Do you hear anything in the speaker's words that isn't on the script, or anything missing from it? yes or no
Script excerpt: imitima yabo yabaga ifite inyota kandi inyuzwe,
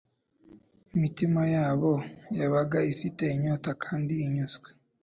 no